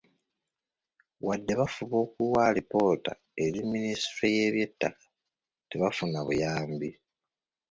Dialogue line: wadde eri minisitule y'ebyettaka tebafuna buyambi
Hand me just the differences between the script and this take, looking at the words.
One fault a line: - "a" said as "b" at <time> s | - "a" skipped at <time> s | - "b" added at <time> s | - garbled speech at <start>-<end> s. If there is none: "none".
- "bafuba okuwa alipoota" added at 1.6 s